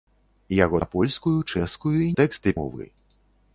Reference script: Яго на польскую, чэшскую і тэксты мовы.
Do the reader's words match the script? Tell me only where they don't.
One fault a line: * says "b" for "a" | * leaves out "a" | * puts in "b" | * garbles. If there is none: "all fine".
all fine